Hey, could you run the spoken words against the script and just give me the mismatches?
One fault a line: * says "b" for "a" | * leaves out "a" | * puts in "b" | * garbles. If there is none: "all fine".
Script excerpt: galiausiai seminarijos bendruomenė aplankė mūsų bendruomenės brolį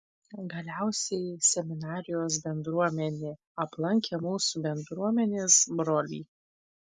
all fine